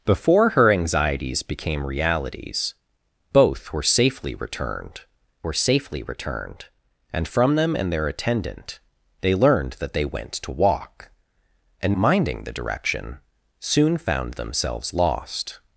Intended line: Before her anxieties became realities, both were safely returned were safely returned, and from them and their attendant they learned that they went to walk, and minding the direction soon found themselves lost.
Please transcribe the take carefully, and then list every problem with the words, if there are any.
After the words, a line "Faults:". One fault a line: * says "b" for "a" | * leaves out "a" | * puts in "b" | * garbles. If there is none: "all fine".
Before her anxieties became realities, both were safely returned were safely returned, and from them and their attendant they learned that they went to walk, and minding the direction soon found themselves lost.
Faults:
all fine